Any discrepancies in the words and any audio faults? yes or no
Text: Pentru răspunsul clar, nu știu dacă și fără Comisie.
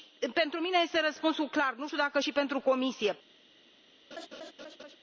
yes